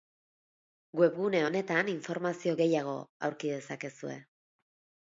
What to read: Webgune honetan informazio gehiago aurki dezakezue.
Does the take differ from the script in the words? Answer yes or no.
no